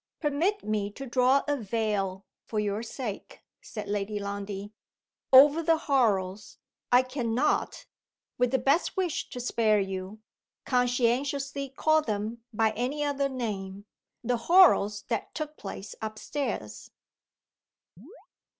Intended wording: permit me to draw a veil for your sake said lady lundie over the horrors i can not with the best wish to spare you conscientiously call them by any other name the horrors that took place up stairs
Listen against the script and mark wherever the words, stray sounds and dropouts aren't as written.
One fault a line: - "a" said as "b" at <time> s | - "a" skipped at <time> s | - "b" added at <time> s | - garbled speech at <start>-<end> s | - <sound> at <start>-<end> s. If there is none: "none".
- chirp at 18.0-18.3 s